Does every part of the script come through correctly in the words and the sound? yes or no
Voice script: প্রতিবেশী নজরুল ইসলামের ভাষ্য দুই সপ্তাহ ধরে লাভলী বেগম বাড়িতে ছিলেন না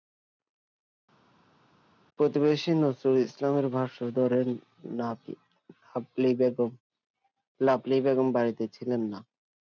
no